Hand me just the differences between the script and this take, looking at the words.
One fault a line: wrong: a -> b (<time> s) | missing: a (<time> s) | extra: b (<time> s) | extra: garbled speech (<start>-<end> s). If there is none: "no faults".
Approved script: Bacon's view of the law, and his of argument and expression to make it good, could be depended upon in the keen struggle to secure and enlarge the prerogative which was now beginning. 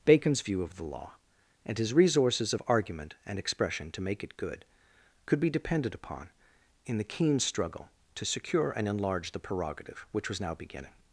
extra: resources (1.9 s)